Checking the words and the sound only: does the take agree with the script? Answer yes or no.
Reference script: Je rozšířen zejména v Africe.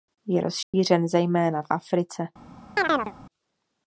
no